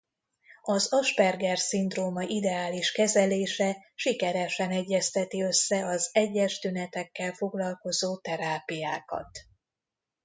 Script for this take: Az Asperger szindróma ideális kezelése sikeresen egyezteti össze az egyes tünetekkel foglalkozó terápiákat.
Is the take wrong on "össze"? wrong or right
right